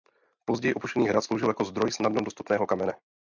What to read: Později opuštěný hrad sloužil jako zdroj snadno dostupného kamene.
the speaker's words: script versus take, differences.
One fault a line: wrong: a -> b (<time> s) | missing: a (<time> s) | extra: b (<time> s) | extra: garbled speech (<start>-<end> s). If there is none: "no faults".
no faults